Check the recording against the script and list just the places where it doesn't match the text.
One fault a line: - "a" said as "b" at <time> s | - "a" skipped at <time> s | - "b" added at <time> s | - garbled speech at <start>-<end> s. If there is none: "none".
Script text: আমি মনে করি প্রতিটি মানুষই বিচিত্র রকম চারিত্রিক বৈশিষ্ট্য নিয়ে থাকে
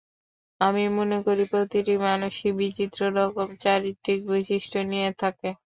none